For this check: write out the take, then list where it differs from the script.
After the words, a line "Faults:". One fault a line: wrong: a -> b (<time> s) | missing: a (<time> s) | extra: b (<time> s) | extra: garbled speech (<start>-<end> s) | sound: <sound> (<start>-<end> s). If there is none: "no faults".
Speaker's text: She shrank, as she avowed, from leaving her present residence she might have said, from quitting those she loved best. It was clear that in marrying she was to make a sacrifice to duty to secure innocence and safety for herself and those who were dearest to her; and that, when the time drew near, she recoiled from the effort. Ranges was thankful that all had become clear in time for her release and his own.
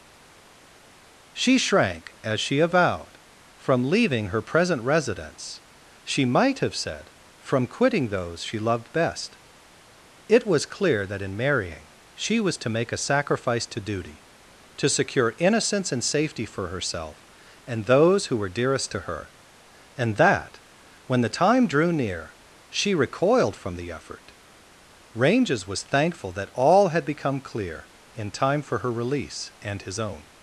She shrank, as she avowed, from leaving her present residence she might have said, from quitting those she loved best. It was clear that in marrying she was to make a sacrifice to duty to secure innocence and safety for herself and those who were dearest to her; and that, when the time drew near, she recoiled from the effort. Ranges was thankful that all had become clear in time for her release and his own.
Faults:
no faults